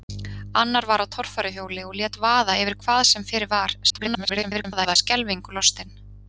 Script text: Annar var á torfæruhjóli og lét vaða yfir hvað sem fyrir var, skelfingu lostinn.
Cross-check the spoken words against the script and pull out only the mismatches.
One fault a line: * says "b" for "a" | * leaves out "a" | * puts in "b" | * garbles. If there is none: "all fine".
* garbles